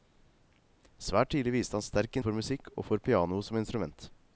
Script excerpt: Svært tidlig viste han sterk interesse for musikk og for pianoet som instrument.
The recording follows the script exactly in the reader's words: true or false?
false